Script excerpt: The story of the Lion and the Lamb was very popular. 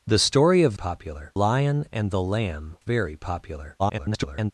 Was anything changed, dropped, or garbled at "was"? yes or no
yes